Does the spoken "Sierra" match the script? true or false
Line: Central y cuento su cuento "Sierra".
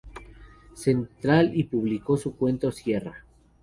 true